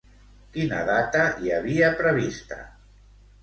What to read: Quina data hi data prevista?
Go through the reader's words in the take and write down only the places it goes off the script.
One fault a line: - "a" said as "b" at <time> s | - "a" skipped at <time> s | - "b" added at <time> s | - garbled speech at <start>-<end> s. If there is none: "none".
- "data" said as "havia" at 1.6 s